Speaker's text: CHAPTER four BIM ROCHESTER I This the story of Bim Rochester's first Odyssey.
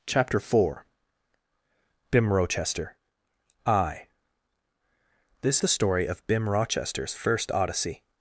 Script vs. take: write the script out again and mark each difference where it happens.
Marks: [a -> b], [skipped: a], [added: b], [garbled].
CHAPTER four BIM ROCHESTER I This the story of Bim Rochester's first Odyssey.